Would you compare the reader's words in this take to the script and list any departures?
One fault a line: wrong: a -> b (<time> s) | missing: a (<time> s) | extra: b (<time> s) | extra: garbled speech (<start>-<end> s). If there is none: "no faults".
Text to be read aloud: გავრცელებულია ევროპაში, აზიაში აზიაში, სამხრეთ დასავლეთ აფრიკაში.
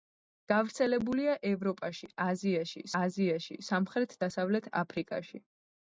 no faults